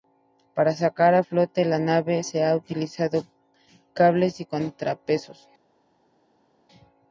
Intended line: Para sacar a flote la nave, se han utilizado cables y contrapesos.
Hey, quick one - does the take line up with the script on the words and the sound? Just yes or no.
yes